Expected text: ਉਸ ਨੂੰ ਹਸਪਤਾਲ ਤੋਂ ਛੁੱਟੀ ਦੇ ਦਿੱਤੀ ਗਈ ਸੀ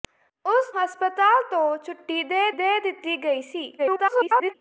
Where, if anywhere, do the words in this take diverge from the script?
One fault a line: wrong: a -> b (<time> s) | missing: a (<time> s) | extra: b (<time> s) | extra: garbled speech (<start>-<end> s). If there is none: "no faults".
missing: ਨੂੰ (0.7 s)
extra: ਦੇ (2.5 s)
extra: garbled speech (3.8-4.5 s)